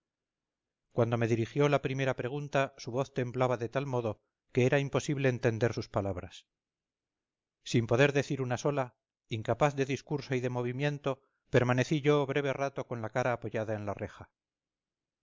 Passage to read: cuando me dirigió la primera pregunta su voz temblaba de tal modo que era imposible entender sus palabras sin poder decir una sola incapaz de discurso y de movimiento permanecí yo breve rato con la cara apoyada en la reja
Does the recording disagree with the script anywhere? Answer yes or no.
no